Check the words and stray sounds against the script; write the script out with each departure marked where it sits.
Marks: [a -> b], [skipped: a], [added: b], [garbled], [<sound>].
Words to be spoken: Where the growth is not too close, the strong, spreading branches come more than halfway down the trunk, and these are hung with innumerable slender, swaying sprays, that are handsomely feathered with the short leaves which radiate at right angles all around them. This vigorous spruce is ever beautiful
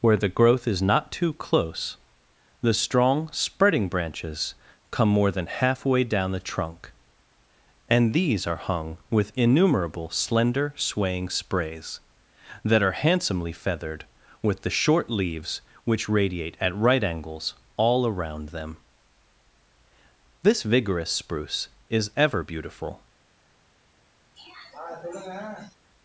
Where the growth is not too close, the strong, spreading branches come more than halfway down the trunk, and these are hung with innumerable slender, swaying sprays, that are handsomely feathered with the short leaves which radiate at right angles all around them. This vigorous spruce is ever beautiful [throat clearing]